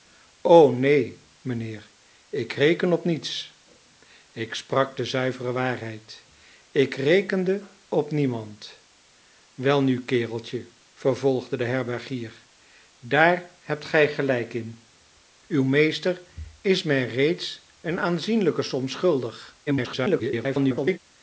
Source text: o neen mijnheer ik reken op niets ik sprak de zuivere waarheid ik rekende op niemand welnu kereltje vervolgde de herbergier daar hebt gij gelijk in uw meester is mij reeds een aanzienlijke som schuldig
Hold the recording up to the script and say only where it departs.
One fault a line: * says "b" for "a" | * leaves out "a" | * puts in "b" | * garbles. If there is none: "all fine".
* garbles